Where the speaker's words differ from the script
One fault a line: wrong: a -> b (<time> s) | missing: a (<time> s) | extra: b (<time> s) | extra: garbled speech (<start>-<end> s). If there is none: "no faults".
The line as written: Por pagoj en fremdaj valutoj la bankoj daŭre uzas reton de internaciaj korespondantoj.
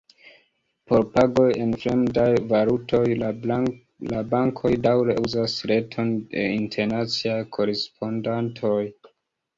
no faults